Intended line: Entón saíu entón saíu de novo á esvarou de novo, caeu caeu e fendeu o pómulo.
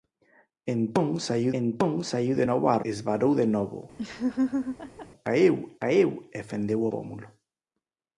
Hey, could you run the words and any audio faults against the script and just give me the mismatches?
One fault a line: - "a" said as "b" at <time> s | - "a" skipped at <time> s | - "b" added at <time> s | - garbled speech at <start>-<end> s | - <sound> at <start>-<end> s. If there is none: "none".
- laugh at 4.0-5.1 s